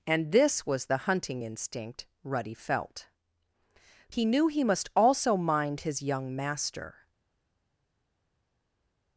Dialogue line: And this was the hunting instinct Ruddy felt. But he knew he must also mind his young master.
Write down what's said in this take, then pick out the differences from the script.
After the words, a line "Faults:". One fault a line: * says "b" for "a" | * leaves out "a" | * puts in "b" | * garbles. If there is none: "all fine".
And this was the hunting instinct Ruddy felt. He knew he must also mind his young master.
Faults:
* leaves out "But"